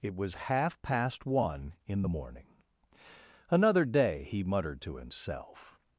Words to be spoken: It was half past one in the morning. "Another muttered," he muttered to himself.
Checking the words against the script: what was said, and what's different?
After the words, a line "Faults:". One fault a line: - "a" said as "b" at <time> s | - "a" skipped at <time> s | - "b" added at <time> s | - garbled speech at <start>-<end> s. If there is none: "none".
It was half past one in the morning. "Another day," he muttered to himself.
Faults:
- "muttered" said as "day" at 3.8 s